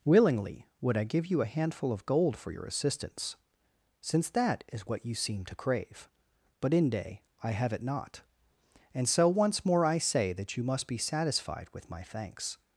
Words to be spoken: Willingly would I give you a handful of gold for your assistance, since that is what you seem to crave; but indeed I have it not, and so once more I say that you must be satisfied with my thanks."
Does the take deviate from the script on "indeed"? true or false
true